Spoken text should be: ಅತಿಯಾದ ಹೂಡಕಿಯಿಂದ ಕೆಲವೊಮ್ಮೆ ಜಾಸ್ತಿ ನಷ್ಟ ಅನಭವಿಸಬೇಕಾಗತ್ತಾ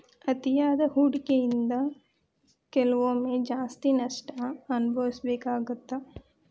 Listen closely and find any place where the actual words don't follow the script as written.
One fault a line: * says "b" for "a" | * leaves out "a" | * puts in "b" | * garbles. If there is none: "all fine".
all fine